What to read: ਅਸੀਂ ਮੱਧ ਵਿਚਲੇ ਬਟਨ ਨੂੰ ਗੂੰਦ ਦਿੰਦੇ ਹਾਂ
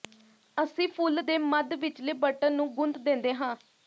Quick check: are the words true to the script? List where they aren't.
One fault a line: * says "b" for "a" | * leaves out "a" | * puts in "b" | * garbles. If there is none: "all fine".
* puts in "ਫੁੱਲ ਦੇ"